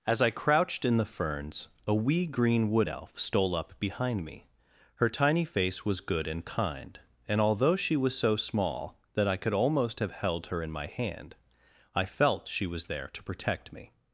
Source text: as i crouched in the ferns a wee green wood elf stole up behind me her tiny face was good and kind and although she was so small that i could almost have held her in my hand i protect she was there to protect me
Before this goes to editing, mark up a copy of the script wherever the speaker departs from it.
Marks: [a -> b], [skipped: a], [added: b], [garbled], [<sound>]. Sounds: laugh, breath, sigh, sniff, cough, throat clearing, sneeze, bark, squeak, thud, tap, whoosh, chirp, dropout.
as i crouched in the ferns a wee green wood elf stole up behind me her tiny face was good and kind and although she was so small that i could almost have held her in my hand i [protect -> felt] she was there to protect me